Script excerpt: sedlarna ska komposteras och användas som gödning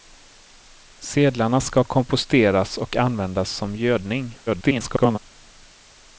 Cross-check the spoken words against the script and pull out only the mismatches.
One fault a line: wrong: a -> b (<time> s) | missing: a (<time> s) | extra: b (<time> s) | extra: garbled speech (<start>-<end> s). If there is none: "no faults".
extra: garbled speech (4.5-5.2 s)